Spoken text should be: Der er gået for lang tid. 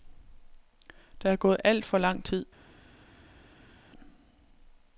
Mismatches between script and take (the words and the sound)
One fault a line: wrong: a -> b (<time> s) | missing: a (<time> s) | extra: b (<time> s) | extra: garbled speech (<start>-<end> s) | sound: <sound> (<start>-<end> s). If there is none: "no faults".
extra: alt (1.6 s)